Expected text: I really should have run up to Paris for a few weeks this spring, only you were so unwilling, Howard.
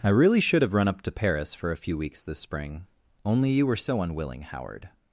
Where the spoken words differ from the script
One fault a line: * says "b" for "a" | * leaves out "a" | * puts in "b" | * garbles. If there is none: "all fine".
all fine